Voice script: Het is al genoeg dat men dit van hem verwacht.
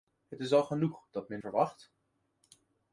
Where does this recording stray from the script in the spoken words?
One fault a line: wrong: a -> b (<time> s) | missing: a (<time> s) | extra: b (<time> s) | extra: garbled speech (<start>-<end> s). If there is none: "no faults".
missing: dit van hem (1.4 s)